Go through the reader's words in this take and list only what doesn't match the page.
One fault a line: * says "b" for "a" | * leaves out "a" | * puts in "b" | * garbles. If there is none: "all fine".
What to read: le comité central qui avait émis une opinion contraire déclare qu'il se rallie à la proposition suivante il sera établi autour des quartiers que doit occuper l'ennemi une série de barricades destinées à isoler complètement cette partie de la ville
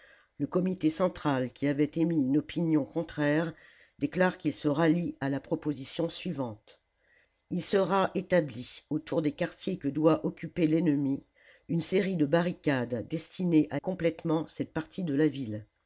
* leaves out "isoler"